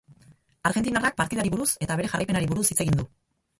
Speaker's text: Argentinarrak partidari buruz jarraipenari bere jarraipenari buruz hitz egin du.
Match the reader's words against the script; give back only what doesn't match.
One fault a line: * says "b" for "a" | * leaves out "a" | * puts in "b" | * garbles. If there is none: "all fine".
* says "eta" for "jarraipenari"